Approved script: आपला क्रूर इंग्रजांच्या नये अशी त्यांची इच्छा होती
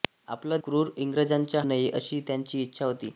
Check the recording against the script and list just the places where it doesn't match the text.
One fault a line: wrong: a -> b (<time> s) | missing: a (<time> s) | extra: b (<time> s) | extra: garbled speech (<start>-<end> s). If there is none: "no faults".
no faults